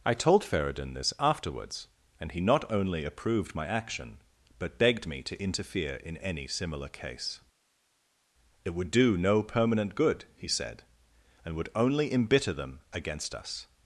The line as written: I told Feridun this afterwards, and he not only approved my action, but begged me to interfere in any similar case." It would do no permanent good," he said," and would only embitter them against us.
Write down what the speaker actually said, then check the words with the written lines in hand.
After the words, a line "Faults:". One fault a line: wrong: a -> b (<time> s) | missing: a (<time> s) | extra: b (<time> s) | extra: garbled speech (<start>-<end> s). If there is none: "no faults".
I told Feridun this afterwards, and he not only approved my action, but begged me to interfere in any similar case." It would do no permanent good," he said," and would only embitter them against us.
Faults:
no faults